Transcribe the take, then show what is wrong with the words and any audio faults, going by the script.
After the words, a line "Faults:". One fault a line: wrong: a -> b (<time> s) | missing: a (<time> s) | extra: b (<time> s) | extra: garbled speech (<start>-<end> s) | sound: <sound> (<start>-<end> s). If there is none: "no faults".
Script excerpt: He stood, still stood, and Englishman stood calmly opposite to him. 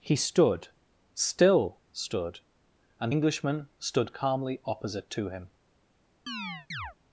He stood, still stood, and Englishman stood calmly opposite to him.
Faults:
sound: chirp (6.3-6.9 s)